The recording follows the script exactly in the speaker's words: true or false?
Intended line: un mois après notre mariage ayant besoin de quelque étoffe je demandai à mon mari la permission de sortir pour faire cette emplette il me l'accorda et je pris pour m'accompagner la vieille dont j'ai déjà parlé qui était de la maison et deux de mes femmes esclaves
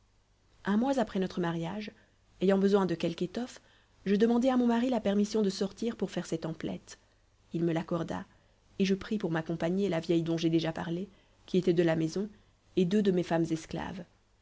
true